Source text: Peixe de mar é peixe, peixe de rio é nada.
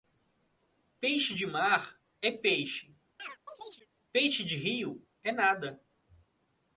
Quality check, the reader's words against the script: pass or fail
pass